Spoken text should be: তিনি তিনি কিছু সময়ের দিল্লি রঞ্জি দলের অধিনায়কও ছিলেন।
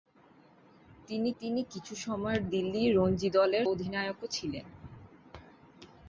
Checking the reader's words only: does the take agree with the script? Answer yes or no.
yes